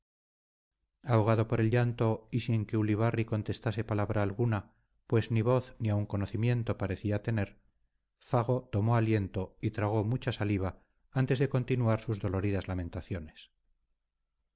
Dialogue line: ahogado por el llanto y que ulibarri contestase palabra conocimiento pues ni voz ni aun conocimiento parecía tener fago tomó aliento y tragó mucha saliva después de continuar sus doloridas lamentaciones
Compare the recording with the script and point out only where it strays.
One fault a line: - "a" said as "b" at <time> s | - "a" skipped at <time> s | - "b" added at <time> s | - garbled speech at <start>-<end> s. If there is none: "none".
- "sin" added at 2.4 s
- "conocimiento" said as "alguna" at 4.2 s
- "después" said as "antes" at 11.1 s